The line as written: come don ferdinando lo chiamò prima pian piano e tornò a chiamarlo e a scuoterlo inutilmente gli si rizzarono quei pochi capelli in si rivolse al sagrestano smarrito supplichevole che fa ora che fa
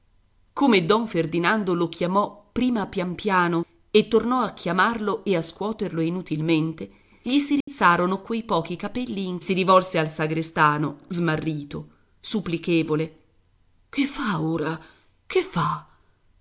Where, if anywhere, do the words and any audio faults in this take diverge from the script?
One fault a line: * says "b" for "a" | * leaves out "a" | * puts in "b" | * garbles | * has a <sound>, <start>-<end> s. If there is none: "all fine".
* has a dropout, 7.6-7.7 s